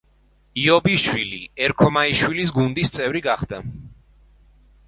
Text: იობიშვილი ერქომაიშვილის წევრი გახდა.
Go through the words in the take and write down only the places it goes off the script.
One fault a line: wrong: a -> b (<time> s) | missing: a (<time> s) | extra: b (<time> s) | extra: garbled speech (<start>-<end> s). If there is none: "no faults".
extra: გუნდის (2.6 s)